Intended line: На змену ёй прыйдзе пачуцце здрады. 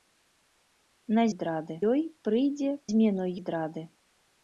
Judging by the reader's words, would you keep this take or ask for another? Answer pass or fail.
fail